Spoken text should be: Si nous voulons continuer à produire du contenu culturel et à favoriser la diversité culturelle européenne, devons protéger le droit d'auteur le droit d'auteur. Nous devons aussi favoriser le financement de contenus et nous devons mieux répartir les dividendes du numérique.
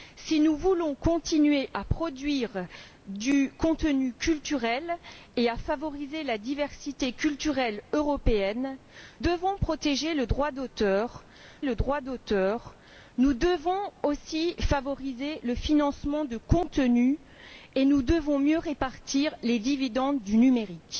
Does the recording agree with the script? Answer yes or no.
yes